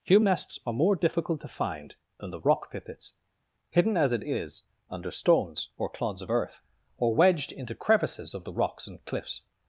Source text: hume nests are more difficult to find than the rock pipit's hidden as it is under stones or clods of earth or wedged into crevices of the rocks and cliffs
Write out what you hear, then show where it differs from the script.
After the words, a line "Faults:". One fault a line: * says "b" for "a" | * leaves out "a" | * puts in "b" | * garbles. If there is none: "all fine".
hume nests are more difficult to find than the rock pipit's hidden as it is under stones or clods of earth or wedged into crevices of the rocks and cliffs
Faults:
all fine